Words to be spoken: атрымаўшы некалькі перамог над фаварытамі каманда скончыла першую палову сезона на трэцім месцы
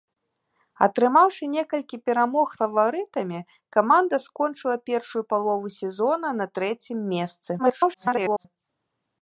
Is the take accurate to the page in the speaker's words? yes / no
no